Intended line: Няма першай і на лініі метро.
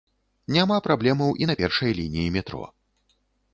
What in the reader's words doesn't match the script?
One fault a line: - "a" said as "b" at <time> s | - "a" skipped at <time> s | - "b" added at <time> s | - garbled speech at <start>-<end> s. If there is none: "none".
- "першай" said as "праблемаў" at 0.9 s
- "першай" added at 1.6 s